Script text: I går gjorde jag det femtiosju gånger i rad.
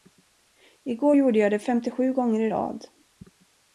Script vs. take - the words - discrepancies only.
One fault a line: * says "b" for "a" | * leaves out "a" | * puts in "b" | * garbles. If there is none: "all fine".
all fine